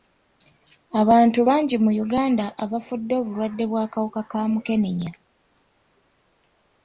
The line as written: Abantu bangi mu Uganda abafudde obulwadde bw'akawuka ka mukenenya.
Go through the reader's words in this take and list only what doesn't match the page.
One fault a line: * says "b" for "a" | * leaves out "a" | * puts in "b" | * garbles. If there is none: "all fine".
all fine